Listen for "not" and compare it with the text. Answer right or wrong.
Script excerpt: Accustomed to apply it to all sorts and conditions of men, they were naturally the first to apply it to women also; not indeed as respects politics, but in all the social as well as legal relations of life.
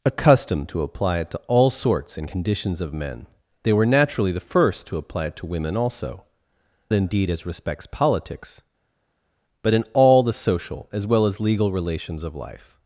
wrong